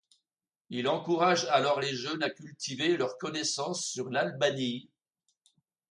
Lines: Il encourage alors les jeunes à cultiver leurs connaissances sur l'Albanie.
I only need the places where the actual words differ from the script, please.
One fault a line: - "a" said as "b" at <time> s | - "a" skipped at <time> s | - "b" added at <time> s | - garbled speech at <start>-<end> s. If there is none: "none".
none